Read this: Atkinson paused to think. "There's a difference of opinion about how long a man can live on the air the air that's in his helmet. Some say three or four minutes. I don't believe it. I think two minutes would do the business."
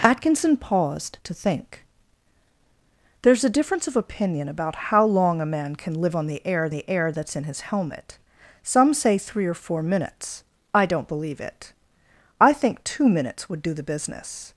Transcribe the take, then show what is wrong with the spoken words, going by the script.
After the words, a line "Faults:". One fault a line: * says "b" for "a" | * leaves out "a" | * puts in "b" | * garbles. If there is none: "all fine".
Atkinson paused to think. "There's a difference of opinion about how long a man can live on the air the air that's in his helmet. Some say three or four minutes. I don't believe it. I think two minutes would do the business."
Faults:
all fine